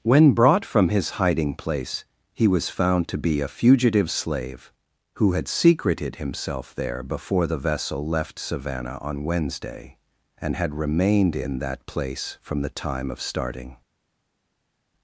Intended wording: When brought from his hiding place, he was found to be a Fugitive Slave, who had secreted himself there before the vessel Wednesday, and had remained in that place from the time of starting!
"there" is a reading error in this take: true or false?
false